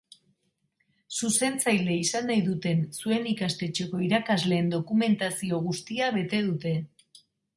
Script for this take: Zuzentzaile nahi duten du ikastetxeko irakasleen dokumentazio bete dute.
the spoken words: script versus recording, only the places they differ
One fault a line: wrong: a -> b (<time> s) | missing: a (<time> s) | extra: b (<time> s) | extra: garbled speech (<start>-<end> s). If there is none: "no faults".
extra: izan (2.0 s)
wrong: du -> zuen (3.0 s)
extra: guztia (5.7 s)